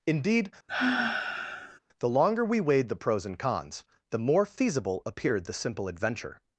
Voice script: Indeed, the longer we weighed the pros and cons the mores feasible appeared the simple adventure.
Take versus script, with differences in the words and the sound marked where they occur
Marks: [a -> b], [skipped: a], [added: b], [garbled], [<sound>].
Indeed, [sigh] the longer we weighed the pros and cons the [mores -> more] feasible appeared the simple adventure.